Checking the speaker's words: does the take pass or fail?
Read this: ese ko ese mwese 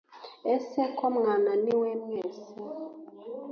fail